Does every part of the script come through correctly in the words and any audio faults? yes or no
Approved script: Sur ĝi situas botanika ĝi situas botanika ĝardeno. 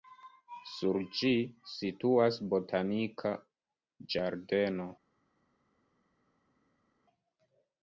no